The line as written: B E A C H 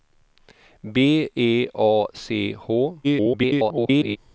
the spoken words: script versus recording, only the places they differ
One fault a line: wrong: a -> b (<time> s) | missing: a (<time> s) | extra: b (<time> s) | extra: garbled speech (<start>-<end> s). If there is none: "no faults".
extra: garbled speech (3.0-4.2 s)